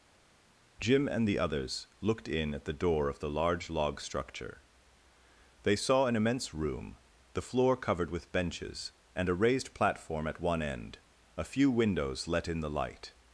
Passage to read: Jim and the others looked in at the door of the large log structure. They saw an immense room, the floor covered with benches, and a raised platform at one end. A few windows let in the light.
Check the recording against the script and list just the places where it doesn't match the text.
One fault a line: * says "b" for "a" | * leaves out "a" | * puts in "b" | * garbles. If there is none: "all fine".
all fine